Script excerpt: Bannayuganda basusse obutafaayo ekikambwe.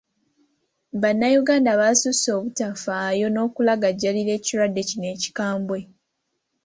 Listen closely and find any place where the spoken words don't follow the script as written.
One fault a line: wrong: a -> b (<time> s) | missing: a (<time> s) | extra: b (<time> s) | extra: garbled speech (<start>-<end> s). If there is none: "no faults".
extra: n'okulagajjalira ekirwadde kino (3.3 s)